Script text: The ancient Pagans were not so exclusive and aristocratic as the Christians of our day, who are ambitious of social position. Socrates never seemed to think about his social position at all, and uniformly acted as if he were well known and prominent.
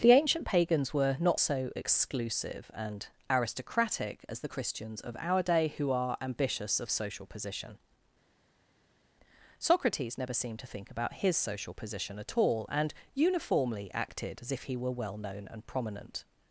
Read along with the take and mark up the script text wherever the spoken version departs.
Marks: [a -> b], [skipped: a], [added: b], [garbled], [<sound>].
The ancient Pagans were not so exclusive and aristocratic as the Christians of our day, who are ambitious of social position. Socrates never seemed to think about his social position at all, and uniformly acted as if he were well known and prominent.